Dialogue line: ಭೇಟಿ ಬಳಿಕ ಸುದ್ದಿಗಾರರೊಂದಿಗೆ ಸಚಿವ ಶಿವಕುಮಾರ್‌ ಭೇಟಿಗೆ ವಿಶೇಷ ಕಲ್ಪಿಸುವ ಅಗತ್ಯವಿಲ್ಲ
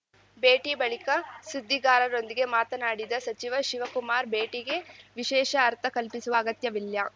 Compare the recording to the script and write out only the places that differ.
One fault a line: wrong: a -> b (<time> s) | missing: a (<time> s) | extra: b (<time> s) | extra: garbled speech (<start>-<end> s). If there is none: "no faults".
extra: ಮಾತನಾಡಿದ (2.5 s)
extra: ಅರ್ಥ (5.7 s)